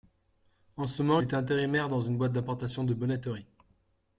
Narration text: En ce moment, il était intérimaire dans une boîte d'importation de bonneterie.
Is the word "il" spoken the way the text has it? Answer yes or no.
no